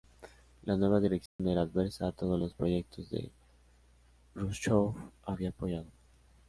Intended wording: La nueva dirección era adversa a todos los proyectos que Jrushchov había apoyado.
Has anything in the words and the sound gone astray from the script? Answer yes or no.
yes